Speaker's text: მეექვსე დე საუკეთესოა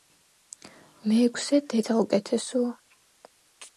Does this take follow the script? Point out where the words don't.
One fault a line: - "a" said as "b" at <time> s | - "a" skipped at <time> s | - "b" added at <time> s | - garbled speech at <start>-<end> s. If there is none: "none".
none